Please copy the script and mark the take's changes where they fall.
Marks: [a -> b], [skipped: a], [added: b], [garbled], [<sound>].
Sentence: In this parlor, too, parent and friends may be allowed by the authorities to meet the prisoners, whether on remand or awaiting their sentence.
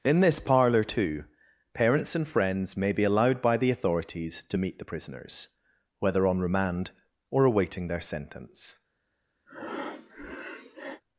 In this parlor, too, [parent -> parents] and friends may be allowed by the authorities to meet the prisoners, whether on remand or awaiting their sentence. [breath]